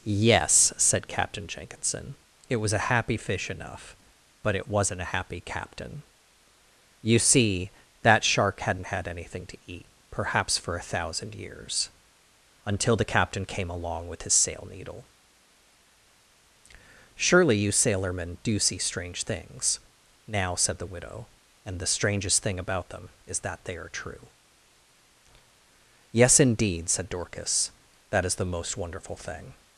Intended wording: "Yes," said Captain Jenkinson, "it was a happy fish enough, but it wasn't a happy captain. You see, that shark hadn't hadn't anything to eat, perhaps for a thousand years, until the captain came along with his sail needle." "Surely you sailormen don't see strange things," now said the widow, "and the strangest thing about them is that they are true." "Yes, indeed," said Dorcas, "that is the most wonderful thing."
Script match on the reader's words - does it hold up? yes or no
no